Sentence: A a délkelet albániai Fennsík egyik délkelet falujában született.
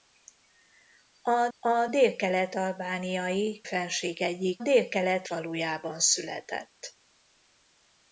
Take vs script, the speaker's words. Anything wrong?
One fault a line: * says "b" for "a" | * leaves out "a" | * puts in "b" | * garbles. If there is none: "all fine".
all fine